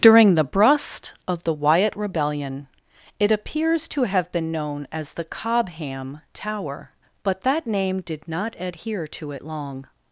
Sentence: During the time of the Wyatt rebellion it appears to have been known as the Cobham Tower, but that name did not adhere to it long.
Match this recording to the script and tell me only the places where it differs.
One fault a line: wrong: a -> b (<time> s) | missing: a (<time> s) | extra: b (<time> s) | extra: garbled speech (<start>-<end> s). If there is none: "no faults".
wrong: time -> brust (0.4 s)